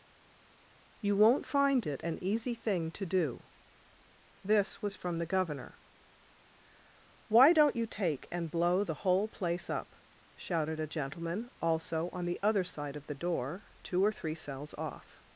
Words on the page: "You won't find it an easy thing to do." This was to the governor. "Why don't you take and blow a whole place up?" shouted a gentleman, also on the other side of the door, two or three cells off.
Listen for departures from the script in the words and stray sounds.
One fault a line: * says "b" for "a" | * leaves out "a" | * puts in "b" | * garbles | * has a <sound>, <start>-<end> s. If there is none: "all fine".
* says "from" for "to"
* says "the" for "a"